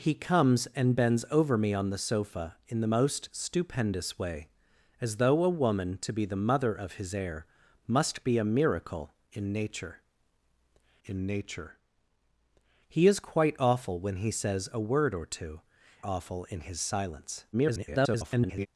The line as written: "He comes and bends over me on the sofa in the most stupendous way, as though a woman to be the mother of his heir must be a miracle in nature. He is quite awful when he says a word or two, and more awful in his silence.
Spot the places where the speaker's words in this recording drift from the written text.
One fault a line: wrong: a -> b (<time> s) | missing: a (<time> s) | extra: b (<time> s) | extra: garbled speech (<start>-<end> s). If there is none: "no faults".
extra: in nature (11.0 s)
missing: and more (15.6 s)
extra: garbled speech (17.5-18.7 s)